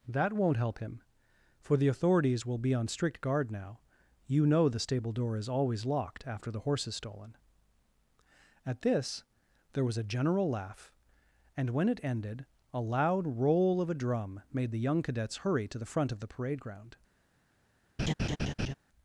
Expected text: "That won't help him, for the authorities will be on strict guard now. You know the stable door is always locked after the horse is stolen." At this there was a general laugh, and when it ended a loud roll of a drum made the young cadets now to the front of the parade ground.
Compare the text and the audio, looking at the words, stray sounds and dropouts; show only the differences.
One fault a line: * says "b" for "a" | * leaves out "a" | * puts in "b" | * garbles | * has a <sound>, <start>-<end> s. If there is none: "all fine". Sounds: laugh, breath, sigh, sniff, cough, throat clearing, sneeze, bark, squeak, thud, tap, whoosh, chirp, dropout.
* says "hurry" for "now"
* has a laugh, 18.0-18.7 s